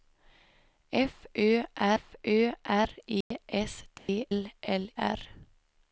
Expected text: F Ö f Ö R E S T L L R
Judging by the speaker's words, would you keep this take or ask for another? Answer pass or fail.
pass